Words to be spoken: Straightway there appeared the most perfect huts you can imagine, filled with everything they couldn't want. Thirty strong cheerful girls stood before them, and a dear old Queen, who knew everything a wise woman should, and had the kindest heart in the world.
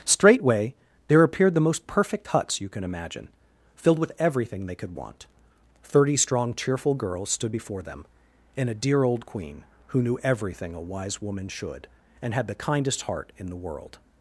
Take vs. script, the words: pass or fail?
fail